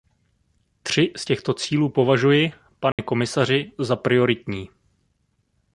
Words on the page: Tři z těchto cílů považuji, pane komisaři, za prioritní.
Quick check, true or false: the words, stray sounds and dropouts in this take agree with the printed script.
false